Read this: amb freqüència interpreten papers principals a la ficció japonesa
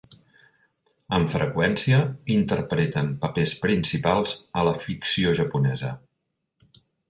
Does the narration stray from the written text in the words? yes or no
no